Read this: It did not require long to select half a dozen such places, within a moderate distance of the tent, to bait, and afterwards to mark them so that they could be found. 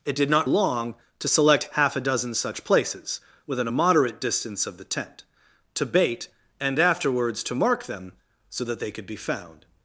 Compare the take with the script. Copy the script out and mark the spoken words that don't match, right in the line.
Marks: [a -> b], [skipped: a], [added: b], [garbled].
It did not [skipped: require] long to select half a dozen such places, within a moderate distance of the tent, to bait, and afterwards to mark them so that they could be found.